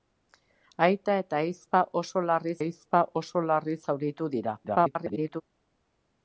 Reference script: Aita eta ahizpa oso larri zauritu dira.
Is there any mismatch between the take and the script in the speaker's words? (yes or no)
yes